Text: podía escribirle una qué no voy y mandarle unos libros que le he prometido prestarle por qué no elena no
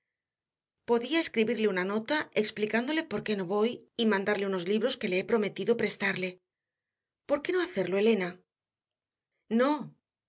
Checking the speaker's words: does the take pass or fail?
fail